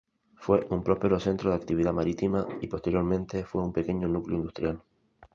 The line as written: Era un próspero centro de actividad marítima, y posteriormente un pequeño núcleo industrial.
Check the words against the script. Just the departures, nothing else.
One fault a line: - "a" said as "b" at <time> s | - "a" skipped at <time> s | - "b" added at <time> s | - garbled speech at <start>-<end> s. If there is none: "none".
- "Era" said as "Fue" at 0.3 s
- "fue" added at 3.4 s